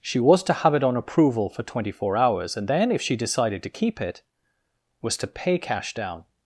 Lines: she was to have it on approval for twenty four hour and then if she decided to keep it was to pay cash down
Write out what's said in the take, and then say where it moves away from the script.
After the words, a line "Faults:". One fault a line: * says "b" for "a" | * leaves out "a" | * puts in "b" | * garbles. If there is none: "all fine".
she was to have it on approval for twenty four hours and then if she decided to keep it was to pay cash down
Faults:
* says "hours" for "hour"